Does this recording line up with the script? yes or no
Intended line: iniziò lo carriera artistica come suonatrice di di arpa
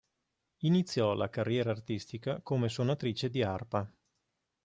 no